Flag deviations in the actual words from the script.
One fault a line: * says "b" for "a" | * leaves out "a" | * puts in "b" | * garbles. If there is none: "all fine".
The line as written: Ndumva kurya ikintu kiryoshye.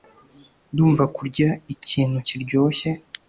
all fine